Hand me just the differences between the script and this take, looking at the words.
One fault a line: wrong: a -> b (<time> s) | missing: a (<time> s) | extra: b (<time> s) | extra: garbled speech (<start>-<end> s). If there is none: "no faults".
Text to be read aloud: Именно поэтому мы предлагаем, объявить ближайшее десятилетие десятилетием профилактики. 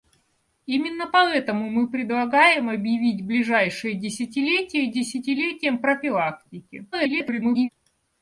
extra: garbled speech (6.9-7.7 s)